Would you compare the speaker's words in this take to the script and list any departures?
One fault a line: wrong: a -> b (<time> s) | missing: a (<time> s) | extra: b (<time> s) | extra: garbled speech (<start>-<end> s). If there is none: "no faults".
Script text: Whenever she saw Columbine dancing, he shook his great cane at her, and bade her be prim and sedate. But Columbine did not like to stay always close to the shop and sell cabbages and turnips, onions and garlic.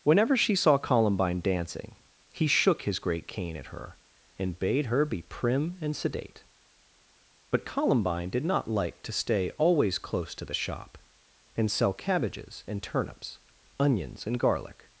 no faults